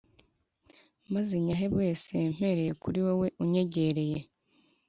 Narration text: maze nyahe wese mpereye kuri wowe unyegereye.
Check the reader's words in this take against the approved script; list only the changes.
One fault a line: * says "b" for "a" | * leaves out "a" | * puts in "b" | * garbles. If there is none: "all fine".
all fine